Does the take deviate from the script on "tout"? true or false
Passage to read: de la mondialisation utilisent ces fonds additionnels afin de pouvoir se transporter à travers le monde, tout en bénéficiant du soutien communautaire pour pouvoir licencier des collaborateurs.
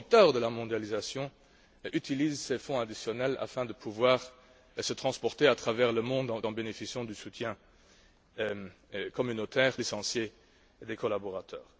true